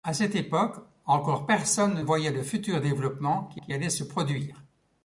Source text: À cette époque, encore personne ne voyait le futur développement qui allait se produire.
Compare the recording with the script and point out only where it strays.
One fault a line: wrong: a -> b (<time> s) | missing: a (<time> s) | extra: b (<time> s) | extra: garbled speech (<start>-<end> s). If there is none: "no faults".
missing: ne (2.0 s)
extra: qui (3.5 s)